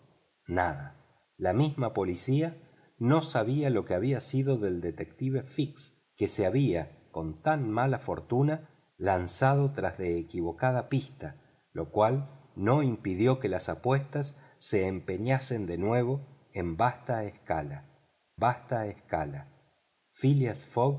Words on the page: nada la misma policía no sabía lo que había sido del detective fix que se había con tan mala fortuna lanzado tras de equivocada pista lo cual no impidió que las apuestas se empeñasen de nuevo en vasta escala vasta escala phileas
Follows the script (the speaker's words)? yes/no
yes